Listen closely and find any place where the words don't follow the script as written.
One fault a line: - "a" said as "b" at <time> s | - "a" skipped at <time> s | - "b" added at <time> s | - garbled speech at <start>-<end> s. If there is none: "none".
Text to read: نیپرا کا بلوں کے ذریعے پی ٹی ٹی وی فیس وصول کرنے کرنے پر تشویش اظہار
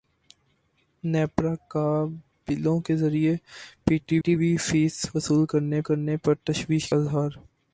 none